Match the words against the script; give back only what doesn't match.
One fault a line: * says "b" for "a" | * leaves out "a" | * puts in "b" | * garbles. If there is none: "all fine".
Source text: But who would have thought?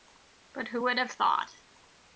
all fine